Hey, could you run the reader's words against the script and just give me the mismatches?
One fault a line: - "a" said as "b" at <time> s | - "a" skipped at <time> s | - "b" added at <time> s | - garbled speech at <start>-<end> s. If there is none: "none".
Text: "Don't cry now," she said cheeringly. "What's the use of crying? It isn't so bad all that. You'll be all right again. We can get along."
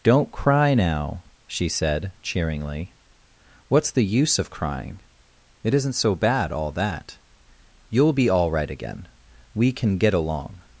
none